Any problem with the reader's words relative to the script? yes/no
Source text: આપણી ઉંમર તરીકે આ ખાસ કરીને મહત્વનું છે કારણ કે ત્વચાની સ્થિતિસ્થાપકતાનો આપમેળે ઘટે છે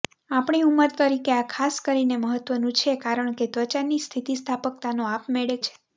yes